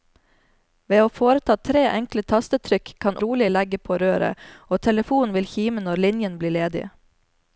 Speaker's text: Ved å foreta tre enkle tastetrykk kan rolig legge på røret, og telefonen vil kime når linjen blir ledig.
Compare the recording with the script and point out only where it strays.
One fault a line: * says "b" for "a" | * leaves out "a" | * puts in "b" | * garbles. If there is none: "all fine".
all fine